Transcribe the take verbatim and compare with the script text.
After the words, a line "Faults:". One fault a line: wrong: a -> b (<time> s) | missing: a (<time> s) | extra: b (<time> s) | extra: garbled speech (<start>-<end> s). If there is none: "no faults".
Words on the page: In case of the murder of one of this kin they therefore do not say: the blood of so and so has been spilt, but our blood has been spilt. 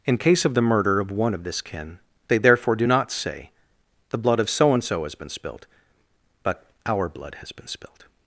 In case of the murder of one of this kin they therefore do not say: the blood of so and so has been spilt, but our blood has been spilt.
Faults:
no faults